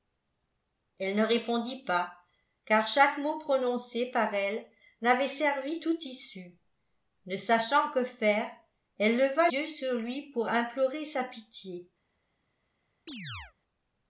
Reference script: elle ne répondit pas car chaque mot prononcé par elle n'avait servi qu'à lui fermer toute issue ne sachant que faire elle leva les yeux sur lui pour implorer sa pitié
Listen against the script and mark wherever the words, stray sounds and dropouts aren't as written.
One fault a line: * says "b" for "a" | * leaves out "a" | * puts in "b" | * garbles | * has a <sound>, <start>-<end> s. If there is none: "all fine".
* leaves out "qu'à lui fermer"
* leaves out "les"
* has a chirp, 13.1-13.5 s